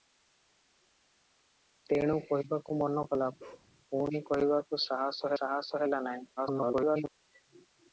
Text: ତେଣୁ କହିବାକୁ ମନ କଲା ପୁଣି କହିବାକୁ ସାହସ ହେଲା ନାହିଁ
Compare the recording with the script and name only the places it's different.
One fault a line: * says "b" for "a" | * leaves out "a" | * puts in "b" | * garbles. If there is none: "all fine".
* puts in "ସାହସ"
* garbles